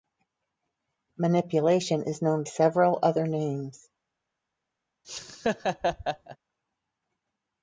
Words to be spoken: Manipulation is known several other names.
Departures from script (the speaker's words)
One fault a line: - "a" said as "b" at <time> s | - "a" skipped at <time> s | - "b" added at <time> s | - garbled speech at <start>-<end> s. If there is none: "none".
none